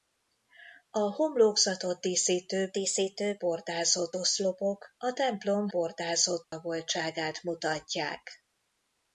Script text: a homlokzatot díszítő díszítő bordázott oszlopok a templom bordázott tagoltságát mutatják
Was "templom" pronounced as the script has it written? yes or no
yes